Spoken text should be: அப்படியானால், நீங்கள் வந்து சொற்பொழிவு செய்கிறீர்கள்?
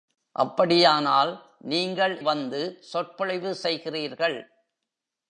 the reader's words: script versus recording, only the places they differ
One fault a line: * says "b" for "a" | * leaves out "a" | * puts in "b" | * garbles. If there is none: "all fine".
all fine